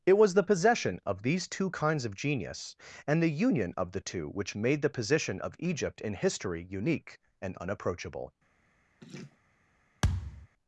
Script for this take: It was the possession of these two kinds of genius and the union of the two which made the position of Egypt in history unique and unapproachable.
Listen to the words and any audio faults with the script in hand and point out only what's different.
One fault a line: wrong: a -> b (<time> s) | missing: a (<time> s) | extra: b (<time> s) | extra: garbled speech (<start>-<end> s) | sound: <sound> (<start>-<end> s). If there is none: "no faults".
sound: laugh (9.0-9.4 s)
sound: thud (10.0-10.5 s)